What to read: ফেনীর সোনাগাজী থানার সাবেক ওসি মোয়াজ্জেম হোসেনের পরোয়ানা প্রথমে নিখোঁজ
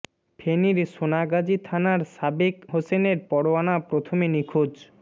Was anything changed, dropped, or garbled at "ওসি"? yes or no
yes